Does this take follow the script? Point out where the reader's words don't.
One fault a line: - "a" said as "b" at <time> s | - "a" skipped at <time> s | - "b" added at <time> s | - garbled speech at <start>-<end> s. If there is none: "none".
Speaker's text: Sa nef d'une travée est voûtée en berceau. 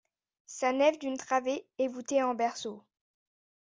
none